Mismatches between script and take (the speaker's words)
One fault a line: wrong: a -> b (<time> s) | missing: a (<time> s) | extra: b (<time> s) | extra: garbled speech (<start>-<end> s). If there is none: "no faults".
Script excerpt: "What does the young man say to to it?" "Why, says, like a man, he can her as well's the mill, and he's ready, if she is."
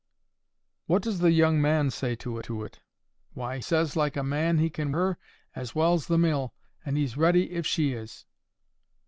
no faults